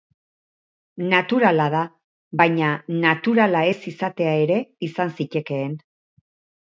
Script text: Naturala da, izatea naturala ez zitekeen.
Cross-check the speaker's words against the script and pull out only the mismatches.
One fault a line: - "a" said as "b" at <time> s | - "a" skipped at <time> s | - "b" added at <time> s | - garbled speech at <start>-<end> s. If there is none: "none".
- "izatea" said as "baina" at 2.4 s
- "izatea ere izan" added at 3.9 s